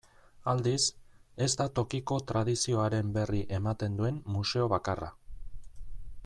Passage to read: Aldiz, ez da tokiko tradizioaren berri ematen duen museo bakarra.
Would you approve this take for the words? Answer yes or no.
yes